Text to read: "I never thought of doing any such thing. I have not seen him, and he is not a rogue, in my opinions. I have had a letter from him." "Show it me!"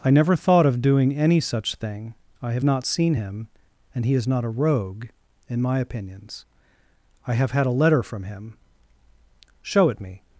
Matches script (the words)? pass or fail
pass